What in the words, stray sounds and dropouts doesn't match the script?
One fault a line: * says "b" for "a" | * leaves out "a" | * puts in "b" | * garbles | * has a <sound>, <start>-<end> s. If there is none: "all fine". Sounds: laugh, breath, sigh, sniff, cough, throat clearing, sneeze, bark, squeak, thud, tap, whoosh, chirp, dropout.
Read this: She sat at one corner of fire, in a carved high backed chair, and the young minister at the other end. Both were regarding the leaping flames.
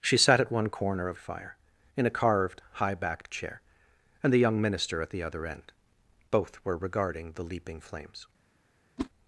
* has a whoosh, 9.0-9.1 s